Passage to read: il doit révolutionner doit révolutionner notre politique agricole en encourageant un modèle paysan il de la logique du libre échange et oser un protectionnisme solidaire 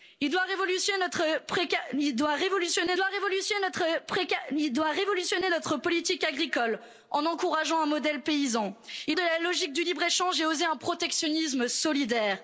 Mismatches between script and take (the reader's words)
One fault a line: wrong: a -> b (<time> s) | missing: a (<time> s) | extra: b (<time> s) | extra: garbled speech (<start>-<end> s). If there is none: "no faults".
no faults